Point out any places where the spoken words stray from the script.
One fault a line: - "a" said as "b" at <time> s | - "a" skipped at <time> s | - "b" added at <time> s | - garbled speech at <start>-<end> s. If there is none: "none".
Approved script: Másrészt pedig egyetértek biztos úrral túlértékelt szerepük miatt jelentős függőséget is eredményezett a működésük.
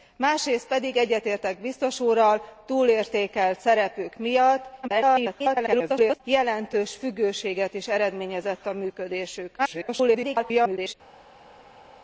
- garbled speech at 4.8-6.2 s
- garbled speech at 9.6-10.9 s